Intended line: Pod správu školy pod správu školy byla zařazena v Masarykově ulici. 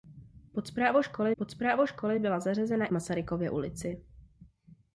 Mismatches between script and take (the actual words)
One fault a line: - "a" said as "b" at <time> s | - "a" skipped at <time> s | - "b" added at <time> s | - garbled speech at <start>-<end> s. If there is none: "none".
none